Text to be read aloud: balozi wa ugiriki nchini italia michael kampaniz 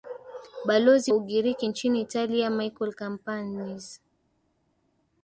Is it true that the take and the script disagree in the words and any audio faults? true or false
true